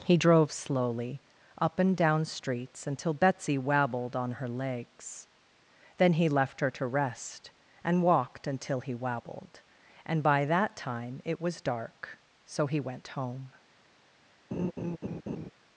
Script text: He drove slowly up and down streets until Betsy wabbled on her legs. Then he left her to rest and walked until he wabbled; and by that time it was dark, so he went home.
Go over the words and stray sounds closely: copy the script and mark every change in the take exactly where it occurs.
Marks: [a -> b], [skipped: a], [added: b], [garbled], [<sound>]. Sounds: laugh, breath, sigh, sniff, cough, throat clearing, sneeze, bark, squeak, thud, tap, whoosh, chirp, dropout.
He drove slowly up and down streets until Betsy wabbled on her legs. Then he left her to rest and walked until he wabbled; and by that time it was dark, so he went home. [laugh]